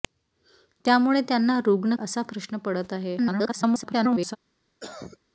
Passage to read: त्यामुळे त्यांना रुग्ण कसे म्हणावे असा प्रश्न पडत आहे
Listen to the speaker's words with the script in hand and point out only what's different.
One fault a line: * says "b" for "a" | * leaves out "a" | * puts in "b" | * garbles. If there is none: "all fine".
* leaves out "कसे म्हणावे"
* garbles